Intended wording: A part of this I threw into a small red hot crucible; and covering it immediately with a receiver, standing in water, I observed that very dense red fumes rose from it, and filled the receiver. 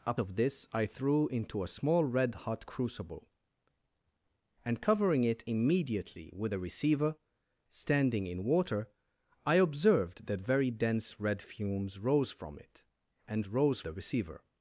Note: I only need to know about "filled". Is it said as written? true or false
false